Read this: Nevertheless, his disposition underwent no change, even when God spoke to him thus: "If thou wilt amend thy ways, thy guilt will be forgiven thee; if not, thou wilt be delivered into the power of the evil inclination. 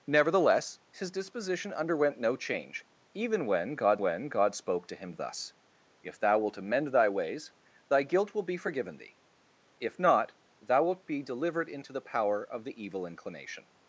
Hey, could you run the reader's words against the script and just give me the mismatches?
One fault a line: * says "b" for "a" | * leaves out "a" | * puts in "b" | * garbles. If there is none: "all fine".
* puts in "when God"